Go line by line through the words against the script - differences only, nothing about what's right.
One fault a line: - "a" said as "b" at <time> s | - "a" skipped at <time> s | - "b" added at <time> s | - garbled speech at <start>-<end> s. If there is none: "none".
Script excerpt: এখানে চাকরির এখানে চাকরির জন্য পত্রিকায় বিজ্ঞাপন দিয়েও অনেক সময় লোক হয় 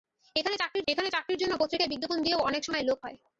none